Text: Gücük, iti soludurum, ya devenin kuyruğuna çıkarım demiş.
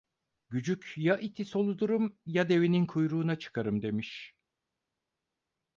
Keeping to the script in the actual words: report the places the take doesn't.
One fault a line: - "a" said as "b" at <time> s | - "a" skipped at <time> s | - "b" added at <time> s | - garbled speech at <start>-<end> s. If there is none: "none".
- "ya" added at 1.0 s